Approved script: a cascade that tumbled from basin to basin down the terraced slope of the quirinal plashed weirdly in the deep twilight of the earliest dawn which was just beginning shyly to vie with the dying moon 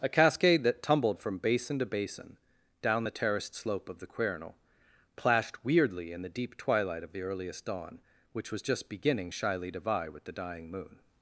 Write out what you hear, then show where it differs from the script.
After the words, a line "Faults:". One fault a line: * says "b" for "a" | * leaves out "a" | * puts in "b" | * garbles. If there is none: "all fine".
a cascade that tumbled from basin to basin down the terraced slope of the quirinal plashed weirdly in the deep twilight of the earliest dawn which was just beginning shyly to vie with the dying moon
Faults:
all fine